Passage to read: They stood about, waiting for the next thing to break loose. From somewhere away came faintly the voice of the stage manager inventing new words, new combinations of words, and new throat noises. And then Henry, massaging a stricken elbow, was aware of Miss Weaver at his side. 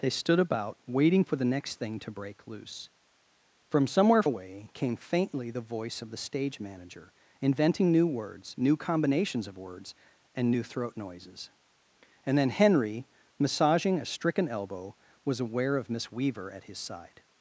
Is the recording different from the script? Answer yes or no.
no